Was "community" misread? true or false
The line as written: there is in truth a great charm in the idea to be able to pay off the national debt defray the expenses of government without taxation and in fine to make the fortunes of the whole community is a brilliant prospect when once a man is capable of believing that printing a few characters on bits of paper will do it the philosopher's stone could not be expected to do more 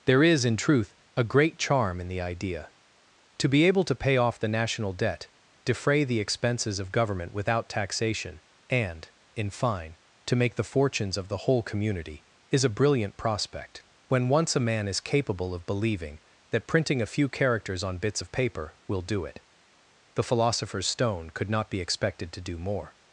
false